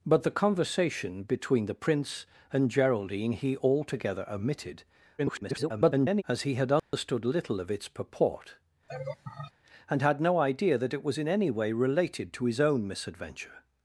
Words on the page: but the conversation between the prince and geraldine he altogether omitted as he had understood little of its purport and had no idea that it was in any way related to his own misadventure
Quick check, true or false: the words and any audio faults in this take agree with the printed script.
false